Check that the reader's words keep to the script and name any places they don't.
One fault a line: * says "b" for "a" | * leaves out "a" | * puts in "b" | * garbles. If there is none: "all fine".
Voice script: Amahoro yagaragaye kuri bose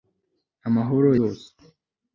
* leaves out "yagaragaye kuri"